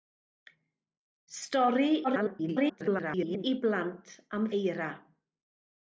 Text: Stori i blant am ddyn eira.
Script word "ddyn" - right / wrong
wrong